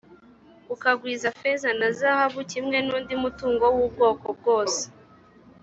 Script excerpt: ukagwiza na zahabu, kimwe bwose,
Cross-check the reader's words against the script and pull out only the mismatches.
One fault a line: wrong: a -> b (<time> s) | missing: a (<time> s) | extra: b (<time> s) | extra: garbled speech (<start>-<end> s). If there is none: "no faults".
extra: feza (1.4 s)
extra: n'undi mutungo w'ubwoko (2.9 s)